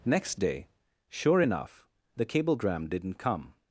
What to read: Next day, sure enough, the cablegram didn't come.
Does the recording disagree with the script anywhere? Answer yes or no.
no